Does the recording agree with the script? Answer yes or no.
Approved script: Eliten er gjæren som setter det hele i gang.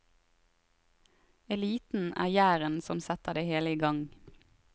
yes